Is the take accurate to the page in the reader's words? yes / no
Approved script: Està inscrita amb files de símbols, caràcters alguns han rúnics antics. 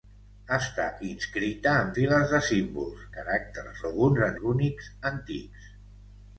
yes